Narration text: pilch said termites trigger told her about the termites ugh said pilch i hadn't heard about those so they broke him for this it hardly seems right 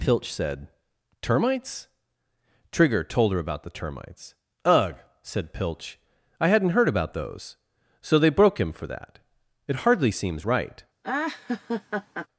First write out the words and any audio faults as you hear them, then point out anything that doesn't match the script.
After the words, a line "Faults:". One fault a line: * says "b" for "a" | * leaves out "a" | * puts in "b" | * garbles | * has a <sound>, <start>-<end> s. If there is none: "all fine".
pilch said termites trigger told her about the termites ugh said pilch i hadn't heard about those so they broke him for that it hardly seems right
Faults:
* says "that" for "this"
* has a laugh, 11.0-12.3 s